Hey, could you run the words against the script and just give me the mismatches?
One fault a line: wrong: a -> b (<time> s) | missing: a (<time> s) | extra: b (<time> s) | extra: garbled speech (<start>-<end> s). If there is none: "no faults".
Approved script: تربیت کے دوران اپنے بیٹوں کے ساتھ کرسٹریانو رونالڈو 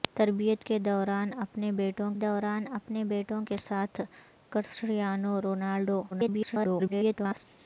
extra: دوران اپنے بیٹوں (2.2 s)
extra: garbled speech (6.1-7.4 s)